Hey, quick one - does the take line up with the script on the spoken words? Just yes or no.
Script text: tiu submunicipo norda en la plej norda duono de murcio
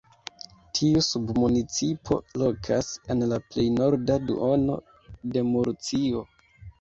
no